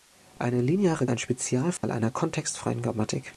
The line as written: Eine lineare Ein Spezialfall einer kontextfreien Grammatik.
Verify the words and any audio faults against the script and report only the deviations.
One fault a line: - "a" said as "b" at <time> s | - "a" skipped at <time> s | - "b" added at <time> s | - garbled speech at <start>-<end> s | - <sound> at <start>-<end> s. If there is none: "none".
- dropout at 1.8-1.8 s